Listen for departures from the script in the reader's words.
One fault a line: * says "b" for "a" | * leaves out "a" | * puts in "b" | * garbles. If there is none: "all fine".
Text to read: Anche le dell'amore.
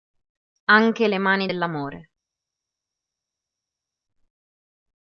* puts in "mani"